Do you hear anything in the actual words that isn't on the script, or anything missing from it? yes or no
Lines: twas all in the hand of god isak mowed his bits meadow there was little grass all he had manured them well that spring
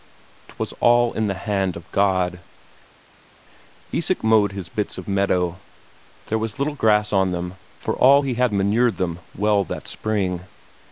yes